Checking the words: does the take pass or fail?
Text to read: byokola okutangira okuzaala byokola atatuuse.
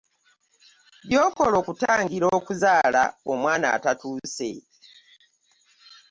fail